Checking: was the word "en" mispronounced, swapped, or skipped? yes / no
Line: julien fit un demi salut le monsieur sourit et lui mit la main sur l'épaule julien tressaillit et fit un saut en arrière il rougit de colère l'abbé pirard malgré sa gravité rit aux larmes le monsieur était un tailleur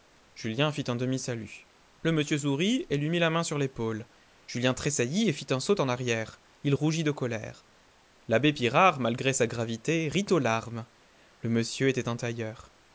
no